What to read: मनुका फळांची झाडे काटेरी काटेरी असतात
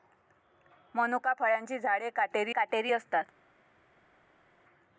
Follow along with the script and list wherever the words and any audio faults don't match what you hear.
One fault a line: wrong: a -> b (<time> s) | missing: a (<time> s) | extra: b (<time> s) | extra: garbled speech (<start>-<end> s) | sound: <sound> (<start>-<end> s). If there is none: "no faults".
no faults